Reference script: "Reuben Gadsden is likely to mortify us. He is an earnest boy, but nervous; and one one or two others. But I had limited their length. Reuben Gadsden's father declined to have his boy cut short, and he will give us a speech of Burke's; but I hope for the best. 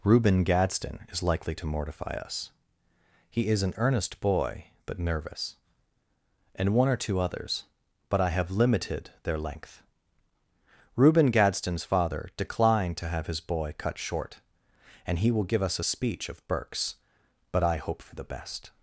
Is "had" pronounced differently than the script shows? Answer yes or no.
yes